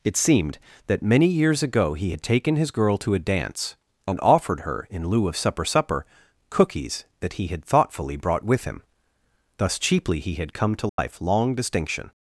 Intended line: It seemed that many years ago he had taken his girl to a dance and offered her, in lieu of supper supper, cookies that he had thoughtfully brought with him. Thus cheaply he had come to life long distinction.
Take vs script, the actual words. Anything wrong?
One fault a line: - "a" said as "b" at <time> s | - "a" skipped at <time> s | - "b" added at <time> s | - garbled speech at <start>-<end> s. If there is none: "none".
none